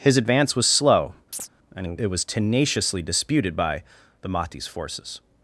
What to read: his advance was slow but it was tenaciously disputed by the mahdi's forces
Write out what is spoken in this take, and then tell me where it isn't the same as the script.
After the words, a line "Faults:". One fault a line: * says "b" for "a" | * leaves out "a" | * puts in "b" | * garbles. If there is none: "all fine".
his advance was slow and it was tenaciously disputed by the mahdi's forces
Faults:
* says "and" for "but"